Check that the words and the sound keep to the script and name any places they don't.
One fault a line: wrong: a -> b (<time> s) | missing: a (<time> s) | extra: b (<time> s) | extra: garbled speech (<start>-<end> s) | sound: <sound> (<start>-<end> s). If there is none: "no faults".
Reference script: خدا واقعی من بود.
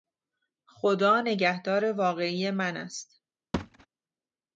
extra: نگهدار (1.2 s)
wrong: بود -> است (2.8 s)
sound: thud (3.5-3.9 s)